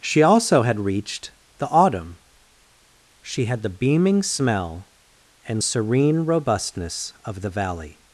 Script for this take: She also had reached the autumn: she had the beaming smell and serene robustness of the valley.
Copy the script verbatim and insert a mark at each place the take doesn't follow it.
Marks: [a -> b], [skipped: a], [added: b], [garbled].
She also had reached the autumn: she had the beaming smell and serene robustness of the valley.